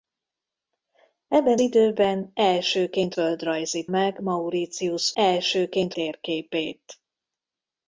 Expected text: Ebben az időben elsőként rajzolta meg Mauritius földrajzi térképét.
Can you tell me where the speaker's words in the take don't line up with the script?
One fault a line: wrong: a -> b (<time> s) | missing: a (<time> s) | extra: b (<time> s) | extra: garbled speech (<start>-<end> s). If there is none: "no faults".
missing: az (1.6 s)
wrong: rajzolta -> földrajzi (3.1 s)
wrong: földrajzi -> elsőként (5.1 s)